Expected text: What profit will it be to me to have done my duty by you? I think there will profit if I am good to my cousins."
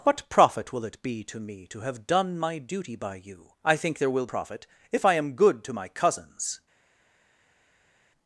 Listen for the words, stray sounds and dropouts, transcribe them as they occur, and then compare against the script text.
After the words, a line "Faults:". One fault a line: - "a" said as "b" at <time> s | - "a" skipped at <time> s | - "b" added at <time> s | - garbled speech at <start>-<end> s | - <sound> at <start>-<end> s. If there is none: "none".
What profit will it be to me to have done my duty by you? I think there will profit if I am good to my cousins."
Faults:
none